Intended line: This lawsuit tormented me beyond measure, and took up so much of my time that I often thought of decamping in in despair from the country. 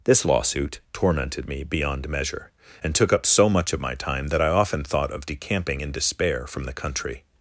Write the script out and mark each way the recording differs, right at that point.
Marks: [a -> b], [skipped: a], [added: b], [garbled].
This lawsuit tormented me beyond measure, and took up so much of my time that I often thought of decamping in [skipped: in] despair from the country.